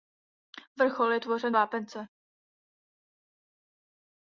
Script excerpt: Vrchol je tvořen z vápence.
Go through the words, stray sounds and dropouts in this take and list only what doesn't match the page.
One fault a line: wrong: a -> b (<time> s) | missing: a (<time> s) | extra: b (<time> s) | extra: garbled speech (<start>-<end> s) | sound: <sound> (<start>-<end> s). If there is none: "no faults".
no faults